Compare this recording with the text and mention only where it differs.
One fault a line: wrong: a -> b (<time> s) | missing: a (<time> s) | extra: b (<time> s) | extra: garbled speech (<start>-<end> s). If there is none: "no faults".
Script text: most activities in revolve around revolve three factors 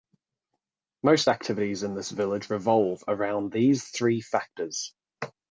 extra: this village (1.9 s)
wrong: revolve -> these (3.5 s)